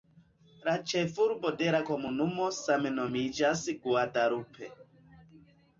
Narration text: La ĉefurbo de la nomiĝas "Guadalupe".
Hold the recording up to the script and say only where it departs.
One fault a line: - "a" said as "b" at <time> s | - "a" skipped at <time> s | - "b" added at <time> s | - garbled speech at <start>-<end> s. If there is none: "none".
- "komunumo same" added at 1.9 s